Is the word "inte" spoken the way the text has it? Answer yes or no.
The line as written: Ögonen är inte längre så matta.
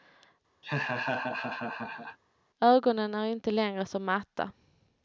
yes